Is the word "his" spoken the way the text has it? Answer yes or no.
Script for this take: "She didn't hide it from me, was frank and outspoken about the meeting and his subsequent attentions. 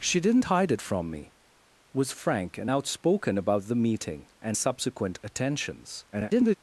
no